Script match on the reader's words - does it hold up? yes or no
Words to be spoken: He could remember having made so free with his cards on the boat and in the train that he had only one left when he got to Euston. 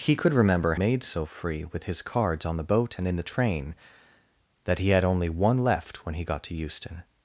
no